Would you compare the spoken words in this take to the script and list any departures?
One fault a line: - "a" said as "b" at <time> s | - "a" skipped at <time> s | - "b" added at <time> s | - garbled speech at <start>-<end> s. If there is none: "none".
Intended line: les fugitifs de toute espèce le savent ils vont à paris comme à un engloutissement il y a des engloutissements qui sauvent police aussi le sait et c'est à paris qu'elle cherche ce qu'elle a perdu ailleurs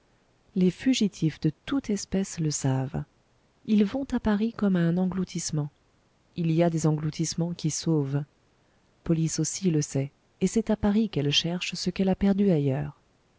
none